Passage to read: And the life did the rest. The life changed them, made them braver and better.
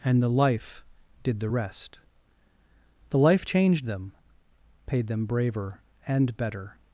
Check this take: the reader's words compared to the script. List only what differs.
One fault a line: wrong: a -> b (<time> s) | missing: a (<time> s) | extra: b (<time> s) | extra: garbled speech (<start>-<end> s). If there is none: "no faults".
wrong: made -> paid (4.9 s)